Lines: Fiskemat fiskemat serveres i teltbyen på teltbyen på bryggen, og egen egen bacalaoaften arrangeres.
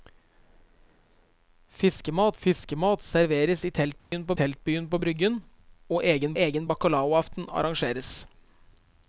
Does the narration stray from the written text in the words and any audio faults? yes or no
yes